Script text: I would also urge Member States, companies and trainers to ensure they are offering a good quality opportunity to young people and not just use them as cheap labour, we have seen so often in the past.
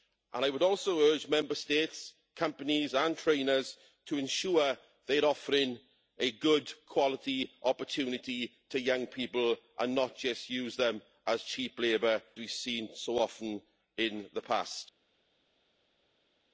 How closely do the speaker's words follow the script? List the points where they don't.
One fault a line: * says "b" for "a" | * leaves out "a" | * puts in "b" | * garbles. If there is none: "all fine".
all fine